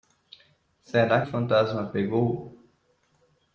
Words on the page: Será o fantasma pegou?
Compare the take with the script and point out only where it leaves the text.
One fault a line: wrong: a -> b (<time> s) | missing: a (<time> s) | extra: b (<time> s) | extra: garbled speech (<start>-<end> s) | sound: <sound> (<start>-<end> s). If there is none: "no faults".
no faults